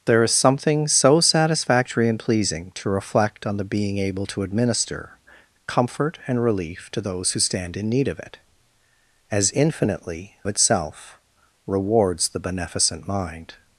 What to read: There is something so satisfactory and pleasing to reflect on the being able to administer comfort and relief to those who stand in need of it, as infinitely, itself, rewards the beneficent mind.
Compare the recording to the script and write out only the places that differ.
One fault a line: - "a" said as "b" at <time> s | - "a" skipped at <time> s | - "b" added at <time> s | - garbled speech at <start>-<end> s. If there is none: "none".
none